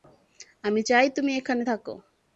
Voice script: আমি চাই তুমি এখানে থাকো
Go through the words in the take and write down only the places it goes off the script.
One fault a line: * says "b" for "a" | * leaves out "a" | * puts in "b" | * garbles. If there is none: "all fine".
all fine